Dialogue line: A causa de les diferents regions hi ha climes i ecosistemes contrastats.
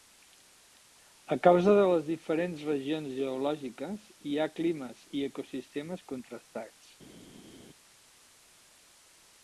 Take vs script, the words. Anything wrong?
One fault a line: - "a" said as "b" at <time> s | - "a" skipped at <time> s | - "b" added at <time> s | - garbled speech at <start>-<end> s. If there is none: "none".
- "geològiques" added at 3.2 s